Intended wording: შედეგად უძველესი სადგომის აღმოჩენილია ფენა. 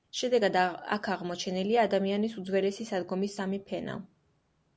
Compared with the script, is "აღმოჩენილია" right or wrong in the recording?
wrong